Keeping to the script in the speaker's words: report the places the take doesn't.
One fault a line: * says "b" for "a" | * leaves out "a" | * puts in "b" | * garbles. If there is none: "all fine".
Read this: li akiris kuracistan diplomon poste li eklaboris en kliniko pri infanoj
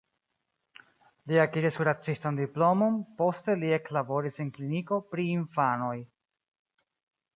all fine